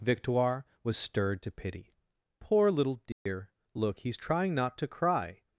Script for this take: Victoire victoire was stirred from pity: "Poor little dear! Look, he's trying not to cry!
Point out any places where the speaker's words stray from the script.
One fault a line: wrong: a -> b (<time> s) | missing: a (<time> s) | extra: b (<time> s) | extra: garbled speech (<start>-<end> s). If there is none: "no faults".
missing: victoire (0.7 s)
wrong: from -> to (1.4 s)